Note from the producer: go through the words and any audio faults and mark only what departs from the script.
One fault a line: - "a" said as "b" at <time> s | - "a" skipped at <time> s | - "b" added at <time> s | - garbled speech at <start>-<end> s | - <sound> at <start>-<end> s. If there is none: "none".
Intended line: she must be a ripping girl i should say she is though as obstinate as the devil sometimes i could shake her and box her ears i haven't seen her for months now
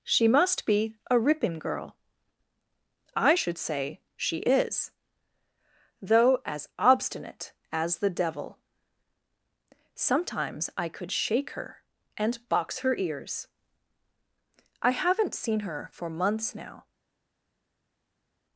none